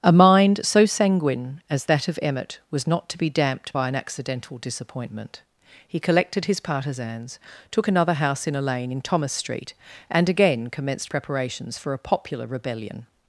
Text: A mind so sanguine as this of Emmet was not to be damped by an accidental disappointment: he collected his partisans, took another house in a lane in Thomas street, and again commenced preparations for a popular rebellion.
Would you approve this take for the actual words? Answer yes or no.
no